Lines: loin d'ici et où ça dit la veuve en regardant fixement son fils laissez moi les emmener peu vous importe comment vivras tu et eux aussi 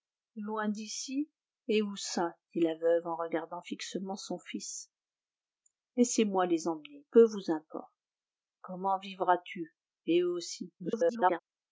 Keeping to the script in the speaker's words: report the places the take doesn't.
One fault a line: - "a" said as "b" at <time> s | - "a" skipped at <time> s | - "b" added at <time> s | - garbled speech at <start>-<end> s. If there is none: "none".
- garbled speech at 10.8-11.4 s